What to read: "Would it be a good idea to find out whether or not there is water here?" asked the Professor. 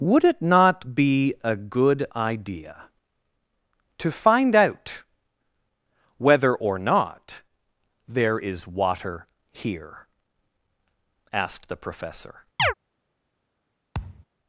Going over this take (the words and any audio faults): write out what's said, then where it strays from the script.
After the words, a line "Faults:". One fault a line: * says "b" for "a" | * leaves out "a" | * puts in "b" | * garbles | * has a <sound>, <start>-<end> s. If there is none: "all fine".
"Would it not be a good idea to find out whether or not there is water here?" asked the Professor.
Faults:
* puts in "not"
* has a chirp, 12.6-12.7 s
* has a thud, 13.9-14.3 s